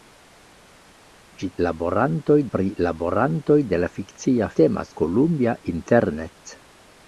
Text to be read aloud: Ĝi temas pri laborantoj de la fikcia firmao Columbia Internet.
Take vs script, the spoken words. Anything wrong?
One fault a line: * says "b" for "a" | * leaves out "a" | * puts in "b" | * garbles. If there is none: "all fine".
* says "laborantoj" for "temas"
* says "temas" for "firmao"